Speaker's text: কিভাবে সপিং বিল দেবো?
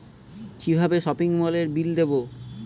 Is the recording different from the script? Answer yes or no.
yes